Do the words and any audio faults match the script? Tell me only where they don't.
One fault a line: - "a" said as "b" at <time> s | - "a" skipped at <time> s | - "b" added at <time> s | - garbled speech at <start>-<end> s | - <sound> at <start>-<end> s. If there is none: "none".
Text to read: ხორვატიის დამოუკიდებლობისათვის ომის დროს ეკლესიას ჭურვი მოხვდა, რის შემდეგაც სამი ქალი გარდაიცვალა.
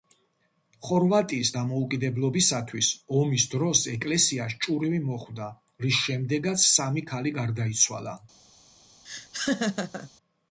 - laugh at 9.0-10.1 s